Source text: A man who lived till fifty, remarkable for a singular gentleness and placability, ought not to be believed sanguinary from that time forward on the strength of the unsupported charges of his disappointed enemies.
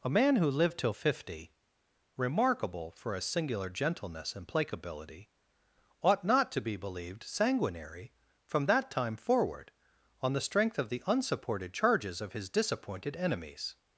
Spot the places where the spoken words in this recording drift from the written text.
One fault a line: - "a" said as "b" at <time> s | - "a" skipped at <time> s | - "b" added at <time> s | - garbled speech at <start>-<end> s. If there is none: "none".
none